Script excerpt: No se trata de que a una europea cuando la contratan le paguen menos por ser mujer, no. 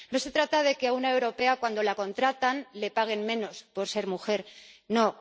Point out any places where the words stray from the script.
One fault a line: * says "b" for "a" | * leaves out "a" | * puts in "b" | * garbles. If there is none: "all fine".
all fine